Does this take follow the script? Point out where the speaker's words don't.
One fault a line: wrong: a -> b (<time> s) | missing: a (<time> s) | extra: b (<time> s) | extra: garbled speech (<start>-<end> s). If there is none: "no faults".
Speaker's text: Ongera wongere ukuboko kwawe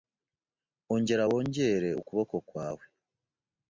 no faults